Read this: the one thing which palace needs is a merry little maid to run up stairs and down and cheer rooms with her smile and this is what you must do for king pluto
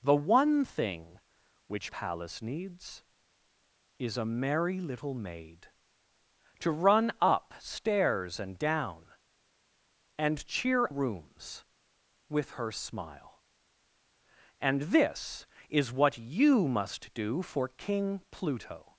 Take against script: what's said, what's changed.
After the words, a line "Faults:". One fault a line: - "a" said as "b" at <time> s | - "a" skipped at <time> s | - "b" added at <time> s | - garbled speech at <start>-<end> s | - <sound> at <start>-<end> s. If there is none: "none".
the one thing which palace needs is a merry little maid to run up stairs and down and cheer rooms with her smile and this is what you must do for king pluto
Faults:
none